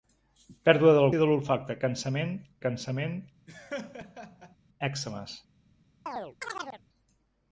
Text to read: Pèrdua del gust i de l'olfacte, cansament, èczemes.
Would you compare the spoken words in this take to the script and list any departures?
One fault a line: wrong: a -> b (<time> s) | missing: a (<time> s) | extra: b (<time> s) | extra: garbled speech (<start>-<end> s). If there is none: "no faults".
missing: gust (1.1 s)
extra: cansament (2.6 s)